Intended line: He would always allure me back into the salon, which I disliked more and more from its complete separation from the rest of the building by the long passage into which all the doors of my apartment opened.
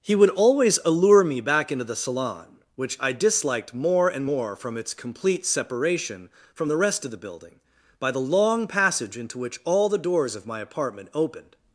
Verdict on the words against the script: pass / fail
pass